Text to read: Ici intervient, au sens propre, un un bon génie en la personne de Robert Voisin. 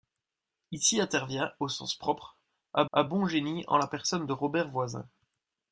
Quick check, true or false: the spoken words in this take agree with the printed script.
true